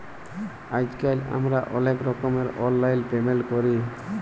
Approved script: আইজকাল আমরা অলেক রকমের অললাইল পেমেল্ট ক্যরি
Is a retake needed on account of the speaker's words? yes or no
no